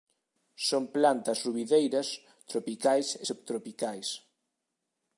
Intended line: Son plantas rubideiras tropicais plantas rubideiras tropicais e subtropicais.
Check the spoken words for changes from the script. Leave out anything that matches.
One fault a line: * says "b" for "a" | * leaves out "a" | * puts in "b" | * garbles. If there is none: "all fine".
* leaves out "plantas rubideiras tropicais"